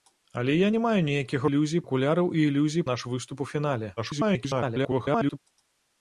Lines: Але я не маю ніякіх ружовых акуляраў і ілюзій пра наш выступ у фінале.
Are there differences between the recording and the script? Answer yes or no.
yes